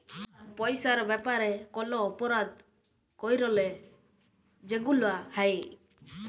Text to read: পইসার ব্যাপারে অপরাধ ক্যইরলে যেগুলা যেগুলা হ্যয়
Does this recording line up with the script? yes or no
no